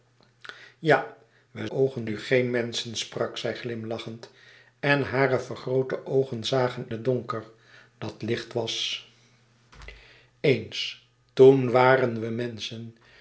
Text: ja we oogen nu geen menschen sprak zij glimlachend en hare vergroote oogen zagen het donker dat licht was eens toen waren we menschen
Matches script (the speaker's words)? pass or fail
pass